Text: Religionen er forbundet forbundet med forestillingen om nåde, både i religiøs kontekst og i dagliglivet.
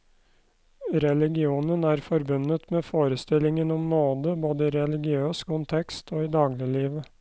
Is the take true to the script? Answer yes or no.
no